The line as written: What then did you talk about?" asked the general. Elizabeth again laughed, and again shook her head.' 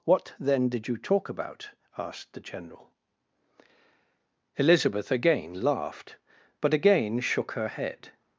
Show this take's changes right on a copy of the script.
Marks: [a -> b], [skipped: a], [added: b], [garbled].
What then did you talk about?" asked the general. Elizabeth again laughed, [and -> but] again shook her head.'